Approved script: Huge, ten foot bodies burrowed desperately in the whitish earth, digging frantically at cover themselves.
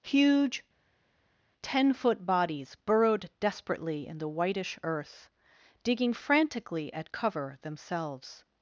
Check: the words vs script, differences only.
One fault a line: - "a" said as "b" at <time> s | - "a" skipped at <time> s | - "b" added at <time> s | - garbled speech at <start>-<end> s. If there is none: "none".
none